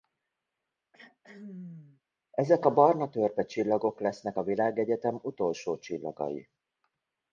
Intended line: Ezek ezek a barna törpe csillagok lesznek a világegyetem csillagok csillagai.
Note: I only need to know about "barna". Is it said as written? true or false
true